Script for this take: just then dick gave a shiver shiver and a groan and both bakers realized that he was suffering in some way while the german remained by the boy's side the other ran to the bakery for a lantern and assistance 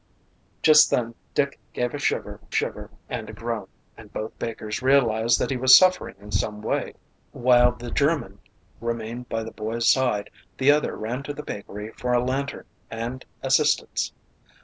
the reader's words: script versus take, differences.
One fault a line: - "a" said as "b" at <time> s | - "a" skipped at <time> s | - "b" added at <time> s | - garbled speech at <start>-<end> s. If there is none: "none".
none